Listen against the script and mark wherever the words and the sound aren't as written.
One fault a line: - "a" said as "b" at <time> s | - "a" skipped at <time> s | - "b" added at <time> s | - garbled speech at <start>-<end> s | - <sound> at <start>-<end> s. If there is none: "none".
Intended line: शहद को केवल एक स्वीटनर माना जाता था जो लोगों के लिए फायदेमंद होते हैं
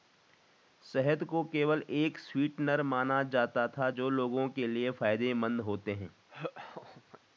- laugh at 6.3-7.2 s